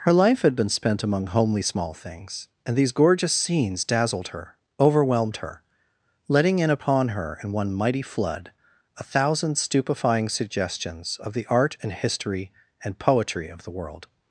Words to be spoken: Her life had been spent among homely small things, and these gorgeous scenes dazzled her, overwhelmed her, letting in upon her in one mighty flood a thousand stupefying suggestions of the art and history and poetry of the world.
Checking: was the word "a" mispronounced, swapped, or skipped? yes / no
no